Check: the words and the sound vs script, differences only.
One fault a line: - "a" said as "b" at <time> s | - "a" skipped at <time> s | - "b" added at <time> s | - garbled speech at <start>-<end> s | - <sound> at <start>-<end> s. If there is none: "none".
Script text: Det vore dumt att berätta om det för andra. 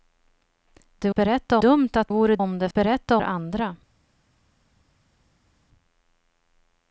- "vore" said as "berätta" at 1.1 s
- "berätta" said as "vore" at 2.1 s
- "för" said as "berätta" at 2.7 s